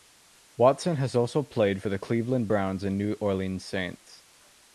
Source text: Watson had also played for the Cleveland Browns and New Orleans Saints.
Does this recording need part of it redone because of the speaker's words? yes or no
yes